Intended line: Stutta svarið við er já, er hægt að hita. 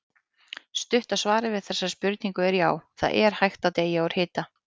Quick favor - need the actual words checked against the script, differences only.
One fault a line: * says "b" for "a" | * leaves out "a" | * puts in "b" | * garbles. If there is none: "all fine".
* puts in "þessari spurningu"
* puts in "það"
* puts in "deyja úr"